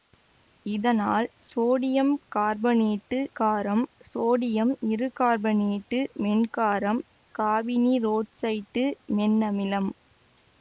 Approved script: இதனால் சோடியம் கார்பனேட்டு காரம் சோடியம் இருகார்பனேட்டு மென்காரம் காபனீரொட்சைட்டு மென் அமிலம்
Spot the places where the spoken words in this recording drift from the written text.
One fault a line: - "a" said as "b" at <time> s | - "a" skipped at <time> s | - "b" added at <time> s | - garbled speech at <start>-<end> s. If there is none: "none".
none